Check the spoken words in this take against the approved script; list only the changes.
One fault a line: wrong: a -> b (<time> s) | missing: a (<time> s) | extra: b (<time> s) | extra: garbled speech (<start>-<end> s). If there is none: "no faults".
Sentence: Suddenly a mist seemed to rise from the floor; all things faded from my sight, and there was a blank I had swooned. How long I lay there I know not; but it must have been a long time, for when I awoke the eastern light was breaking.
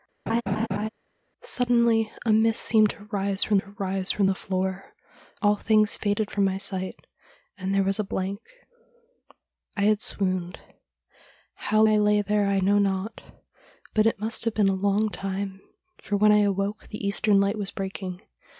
extra: to rise from (3.6 s)
missing: long (11.8 s)